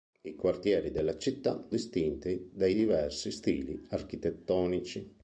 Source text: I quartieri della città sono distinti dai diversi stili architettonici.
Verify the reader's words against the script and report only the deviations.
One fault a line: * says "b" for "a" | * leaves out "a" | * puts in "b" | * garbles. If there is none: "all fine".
* leaves out "sono"